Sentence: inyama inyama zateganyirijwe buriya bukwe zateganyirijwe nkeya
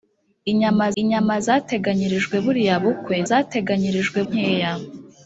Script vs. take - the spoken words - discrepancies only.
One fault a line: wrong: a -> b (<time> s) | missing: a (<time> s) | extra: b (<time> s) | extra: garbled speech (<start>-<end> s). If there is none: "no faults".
no faults